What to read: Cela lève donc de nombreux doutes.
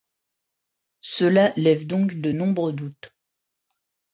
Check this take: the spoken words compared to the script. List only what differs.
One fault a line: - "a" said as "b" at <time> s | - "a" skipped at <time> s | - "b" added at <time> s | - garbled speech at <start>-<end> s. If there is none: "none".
none